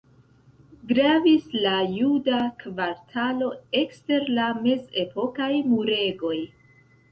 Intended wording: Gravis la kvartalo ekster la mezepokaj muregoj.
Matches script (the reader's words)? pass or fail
fail